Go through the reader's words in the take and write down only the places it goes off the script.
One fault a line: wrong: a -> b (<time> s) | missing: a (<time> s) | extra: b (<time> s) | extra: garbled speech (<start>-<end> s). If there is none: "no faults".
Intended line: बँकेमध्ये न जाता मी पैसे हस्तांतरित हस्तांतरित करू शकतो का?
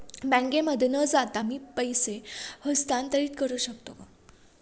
missing: हस्तांतरित (3.3 s)